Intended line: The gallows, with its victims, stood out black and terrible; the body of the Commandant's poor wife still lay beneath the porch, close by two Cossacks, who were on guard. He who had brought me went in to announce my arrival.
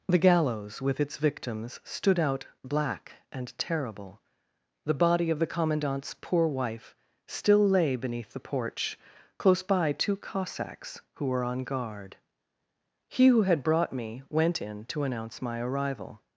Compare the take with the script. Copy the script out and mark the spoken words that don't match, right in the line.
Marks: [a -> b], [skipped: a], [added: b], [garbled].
The gallows, with its victims, stood out black and terrible; the body of the Commandant's poor wife still lay beneath the porch, close by two Cossacks, who were on guard. He who had brought me went in to announce my arrival.